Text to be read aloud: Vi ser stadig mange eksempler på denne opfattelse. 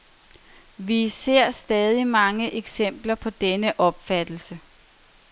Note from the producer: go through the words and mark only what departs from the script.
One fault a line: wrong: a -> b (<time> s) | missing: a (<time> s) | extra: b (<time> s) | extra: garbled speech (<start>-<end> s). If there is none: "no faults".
no faults